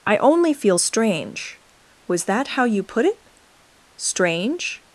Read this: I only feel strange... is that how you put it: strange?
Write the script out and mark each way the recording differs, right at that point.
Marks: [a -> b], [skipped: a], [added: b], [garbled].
I only feel strange... [is -> was] that how you put it: strange?